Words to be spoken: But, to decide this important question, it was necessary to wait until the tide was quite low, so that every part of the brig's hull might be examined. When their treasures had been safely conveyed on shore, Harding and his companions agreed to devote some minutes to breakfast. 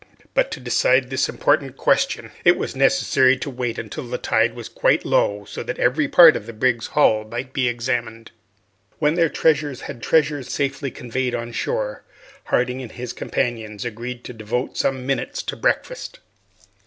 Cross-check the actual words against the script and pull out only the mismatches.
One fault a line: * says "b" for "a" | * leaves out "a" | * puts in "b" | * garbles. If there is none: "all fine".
* says "treasures" for "been"